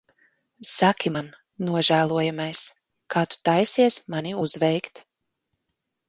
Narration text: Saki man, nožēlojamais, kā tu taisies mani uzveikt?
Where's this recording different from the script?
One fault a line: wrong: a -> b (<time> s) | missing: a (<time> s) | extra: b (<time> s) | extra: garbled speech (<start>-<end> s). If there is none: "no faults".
no faults